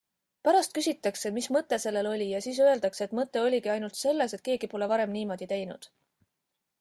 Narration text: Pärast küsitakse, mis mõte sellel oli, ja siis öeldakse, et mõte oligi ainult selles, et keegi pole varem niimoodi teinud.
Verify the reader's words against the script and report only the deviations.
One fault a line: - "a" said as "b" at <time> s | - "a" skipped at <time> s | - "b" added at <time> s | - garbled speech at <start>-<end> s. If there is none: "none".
none